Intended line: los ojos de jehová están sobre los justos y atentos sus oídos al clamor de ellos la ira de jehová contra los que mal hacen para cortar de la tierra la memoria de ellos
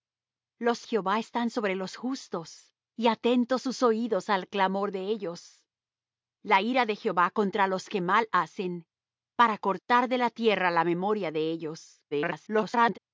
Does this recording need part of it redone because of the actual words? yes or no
yes